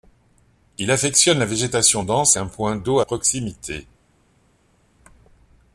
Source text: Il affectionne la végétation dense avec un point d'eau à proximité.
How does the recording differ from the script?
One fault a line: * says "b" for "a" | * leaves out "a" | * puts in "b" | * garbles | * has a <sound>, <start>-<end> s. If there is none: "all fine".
* leaves out "avec"
* leaves out "à"